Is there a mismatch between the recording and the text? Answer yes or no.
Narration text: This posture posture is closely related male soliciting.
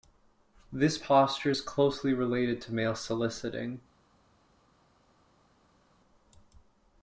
yes